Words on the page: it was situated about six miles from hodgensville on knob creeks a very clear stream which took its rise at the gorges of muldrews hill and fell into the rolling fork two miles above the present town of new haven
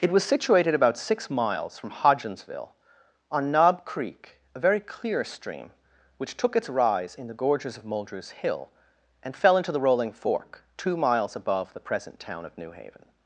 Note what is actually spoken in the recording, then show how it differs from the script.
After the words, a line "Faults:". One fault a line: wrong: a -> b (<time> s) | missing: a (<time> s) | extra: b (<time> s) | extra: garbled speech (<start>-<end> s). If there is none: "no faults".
it was situated about six miles from hodgensville on knob creek a very clear stream which took its rise in the gorges of muldrews hill and fell into the rolling fork two miles above the present town of new haven
Faults:
wrong: creeks -> creek (3.8 s)
wrong: at -> in (7.1 s)